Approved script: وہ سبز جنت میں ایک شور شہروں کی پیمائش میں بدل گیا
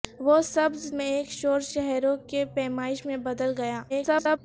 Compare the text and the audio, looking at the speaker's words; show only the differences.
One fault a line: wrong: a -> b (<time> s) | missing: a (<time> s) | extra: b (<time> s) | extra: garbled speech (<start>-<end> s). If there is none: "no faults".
missing: جنت (0.9 s)
extra: garbled speech (3.9-4.4 s)